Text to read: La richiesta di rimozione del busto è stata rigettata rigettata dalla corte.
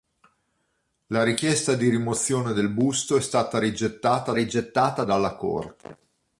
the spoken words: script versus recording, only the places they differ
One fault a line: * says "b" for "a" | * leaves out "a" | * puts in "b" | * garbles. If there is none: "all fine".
all fine